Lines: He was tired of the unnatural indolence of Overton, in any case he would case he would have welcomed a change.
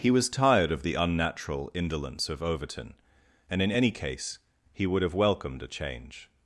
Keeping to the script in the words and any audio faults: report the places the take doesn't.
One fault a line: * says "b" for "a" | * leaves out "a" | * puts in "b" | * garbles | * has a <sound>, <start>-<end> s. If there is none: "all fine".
* puts in "and"
* leaves out "case he would"